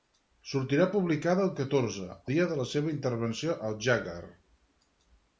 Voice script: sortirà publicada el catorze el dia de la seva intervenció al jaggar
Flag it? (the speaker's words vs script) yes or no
yes